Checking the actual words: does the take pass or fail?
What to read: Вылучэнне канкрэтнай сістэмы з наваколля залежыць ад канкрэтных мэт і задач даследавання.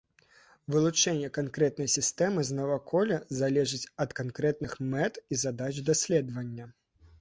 pass